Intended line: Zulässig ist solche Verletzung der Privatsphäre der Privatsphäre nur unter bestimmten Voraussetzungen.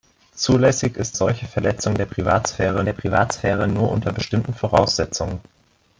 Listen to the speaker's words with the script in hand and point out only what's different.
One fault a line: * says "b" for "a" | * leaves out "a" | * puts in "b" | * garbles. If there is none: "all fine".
all fine